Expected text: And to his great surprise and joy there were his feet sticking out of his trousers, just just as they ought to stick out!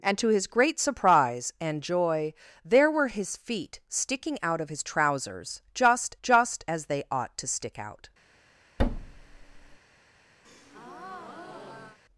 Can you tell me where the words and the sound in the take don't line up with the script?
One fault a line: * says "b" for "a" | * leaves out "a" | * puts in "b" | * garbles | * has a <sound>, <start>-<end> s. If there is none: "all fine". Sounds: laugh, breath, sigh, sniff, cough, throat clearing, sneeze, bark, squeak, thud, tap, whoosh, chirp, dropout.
* has a thud, 8.8-9.8 s
* has a breath, 10.4-12.0 s